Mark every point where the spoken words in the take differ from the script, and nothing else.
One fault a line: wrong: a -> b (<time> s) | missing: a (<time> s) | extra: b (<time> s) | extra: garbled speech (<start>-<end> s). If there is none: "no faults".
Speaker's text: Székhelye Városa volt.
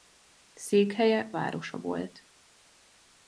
no faults